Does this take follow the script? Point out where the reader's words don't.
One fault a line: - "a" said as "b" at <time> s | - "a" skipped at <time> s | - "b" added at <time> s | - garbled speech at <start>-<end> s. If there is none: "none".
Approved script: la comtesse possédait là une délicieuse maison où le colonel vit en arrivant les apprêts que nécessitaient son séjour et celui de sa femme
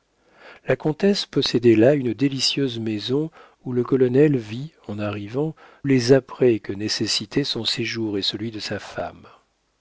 none